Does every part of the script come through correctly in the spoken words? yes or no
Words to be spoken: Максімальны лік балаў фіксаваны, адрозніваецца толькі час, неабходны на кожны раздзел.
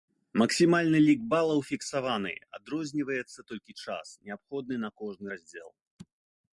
yes